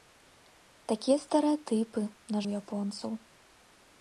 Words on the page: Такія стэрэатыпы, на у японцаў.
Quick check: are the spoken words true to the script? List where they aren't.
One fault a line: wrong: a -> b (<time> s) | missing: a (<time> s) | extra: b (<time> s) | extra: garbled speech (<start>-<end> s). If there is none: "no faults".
no faults